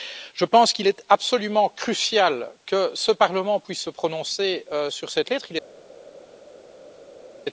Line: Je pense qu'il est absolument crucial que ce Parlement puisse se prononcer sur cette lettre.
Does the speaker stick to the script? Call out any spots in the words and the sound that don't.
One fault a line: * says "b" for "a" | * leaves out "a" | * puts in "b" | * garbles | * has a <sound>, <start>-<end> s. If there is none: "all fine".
all fine